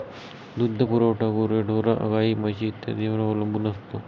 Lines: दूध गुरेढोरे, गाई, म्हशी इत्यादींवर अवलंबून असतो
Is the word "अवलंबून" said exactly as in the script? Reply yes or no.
yes